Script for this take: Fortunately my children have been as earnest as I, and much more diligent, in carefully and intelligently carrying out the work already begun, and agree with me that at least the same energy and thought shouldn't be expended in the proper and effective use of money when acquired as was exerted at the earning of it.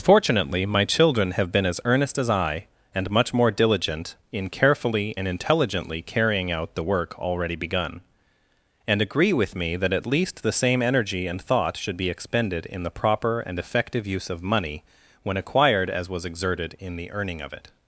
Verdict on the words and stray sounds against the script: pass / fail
fail